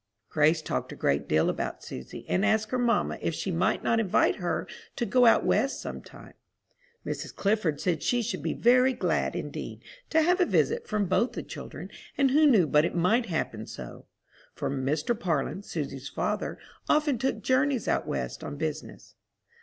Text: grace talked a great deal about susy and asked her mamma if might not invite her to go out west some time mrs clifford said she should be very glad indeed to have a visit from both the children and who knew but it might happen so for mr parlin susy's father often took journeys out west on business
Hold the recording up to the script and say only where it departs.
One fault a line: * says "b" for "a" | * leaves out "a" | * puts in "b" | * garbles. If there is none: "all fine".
* puts in "she"